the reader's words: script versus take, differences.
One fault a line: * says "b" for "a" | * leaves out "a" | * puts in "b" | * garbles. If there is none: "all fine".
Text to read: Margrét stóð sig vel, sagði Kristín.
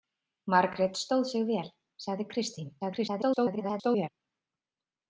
* garbles